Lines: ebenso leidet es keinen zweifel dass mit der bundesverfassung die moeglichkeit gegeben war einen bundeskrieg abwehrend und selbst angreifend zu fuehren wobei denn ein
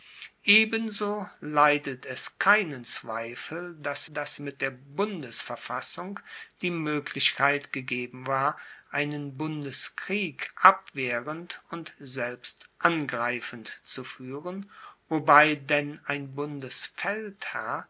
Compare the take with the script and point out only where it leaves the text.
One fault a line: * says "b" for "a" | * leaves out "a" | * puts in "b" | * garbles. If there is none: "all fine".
* puts in "dass"